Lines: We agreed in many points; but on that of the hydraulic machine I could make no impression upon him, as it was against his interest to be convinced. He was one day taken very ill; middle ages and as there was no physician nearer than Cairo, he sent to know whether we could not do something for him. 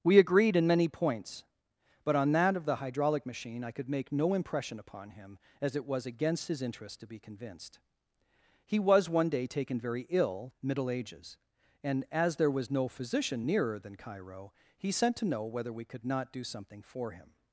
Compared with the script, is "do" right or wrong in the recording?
right